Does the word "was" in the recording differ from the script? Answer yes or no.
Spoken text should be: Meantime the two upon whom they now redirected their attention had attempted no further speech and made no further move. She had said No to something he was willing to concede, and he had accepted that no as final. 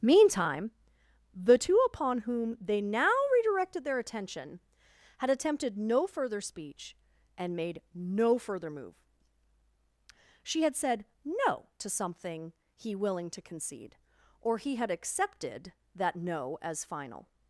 yes